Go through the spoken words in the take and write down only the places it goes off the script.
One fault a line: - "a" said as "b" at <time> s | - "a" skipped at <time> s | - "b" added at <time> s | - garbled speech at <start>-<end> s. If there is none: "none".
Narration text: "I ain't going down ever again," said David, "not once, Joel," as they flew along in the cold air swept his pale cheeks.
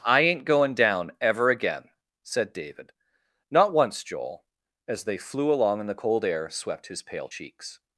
none